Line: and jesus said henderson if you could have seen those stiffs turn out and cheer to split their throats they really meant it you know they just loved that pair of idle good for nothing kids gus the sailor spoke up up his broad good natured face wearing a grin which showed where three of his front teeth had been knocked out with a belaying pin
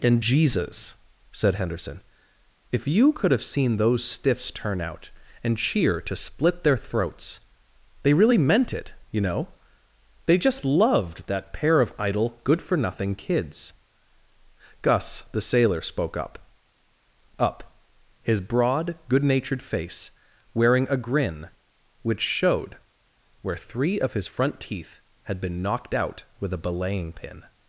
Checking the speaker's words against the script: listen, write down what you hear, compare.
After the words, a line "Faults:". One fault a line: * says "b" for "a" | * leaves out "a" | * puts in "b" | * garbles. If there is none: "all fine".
and jesus said henderson if you could have seen those stiffs turn out and cheer to split their throats they really meant it you know they just loved that pair of idle good for nothing kids gus the sailor spoke up up his broad good natured face wearing a grin which showed where three of his front teeth had been knocked out with a belaying pin
Faults:
all fine